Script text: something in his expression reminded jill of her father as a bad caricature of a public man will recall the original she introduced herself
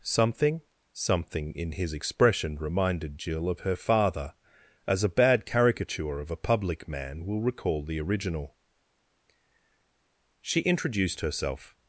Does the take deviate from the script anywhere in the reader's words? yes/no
yes